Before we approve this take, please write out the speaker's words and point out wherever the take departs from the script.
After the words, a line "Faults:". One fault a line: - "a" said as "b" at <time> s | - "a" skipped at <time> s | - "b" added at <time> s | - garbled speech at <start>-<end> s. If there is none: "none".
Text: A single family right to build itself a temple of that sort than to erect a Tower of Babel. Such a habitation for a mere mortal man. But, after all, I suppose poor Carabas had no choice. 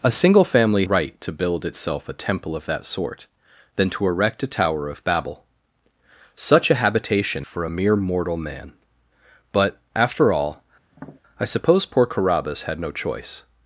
A single family right to build itself a temple of that sort than to erect a Tower of Babel. Such a habitation for a mere mortal man. But, after all, I suppose poor Carabas had no choice.
Faults:
none